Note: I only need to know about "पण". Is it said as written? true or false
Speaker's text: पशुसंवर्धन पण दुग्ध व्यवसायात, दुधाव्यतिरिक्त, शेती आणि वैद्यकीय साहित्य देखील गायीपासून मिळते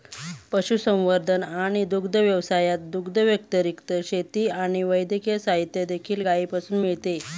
false